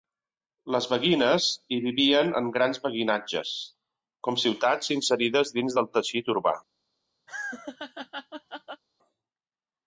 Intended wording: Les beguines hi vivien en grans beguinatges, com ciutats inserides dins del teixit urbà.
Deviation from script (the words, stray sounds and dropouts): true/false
true